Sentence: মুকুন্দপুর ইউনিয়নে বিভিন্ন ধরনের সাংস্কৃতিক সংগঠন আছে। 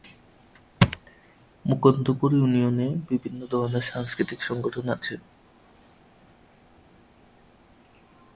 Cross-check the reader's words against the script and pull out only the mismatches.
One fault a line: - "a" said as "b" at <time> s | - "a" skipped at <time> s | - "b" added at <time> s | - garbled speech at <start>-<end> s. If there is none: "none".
none